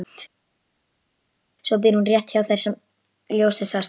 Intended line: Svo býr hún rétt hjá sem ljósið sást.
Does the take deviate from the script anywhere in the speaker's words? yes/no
yes